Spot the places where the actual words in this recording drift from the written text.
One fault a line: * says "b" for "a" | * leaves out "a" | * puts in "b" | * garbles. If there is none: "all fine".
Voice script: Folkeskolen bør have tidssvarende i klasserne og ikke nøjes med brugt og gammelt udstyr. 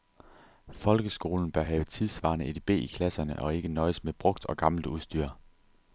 * puts in "edb"